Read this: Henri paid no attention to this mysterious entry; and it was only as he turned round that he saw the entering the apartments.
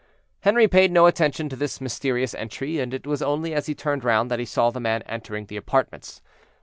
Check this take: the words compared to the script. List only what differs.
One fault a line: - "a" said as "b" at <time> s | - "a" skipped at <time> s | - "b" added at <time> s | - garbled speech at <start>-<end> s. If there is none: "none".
- "man" added at 4.8 s